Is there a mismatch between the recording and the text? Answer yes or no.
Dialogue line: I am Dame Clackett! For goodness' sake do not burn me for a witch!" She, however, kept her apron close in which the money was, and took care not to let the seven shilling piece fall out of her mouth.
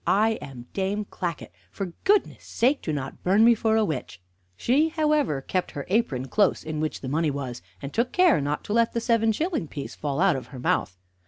no